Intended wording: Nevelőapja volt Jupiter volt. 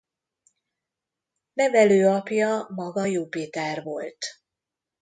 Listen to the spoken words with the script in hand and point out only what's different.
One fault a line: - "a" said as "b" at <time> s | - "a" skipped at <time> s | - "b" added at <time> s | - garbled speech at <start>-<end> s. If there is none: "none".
- "volt" said as "maga" at 2.7 s